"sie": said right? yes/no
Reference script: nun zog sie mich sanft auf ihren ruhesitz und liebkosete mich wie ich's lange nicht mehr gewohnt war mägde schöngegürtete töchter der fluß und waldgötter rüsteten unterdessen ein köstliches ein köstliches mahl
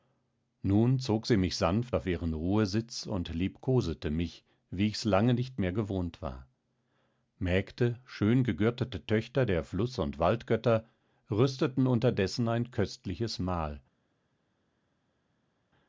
yes